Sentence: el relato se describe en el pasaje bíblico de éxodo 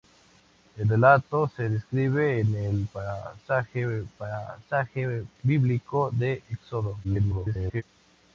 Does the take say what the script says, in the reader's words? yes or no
no